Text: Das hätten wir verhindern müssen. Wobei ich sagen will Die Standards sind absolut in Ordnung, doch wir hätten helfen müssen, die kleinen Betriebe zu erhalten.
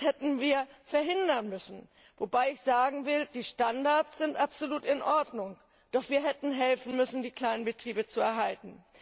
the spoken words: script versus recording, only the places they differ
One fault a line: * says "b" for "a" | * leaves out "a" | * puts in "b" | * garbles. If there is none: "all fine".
all fine